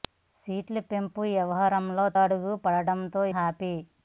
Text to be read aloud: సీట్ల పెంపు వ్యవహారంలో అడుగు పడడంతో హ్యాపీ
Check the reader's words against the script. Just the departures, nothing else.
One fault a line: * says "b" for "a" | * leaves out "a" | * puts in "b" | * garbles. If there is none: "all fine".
all fine